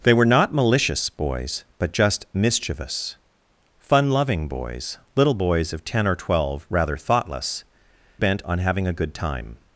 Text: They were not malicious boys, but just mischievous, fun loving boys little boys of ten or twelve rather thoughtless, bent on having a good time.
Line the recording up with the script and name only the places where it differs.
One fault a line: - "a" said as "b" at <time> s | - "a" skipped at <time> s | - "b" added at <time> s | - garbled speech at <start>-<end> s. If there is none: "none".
none